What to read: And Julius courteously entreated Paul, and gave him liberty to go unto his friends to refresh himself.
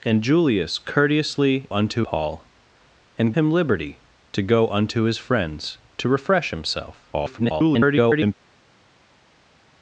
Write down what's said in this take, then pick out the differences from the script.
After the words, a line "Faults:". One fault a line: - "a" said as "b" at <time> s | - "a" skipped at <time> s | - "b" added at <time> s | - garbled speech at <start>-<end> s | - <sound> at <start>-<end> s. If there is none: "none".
And Julius courteously unto Paul, and him liberty to go unto his friends to refresh himself. [garbled]
Faults:
- "entreated" said as "unto" at 1.7 s
- "gave" skipped at 3.3 s
- garbled speech at 7.1-8.3 s